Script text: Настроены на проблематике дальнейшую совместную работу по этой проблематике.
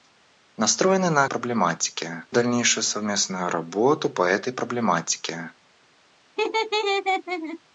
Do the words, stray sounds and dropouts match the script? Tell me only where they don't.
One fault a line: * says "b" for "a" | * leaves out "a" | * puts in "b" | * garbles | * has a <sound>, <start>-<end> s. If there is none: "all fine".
* has a laugh, 6.4-7.6 s